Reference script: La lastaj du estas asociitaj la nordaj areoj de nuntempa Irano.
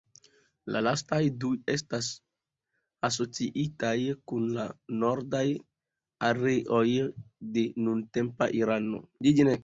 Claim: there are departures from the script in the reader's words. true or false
true